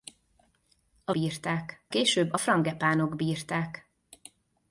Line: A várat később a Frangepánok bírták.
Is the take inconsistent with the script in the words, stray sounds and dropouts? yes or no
yes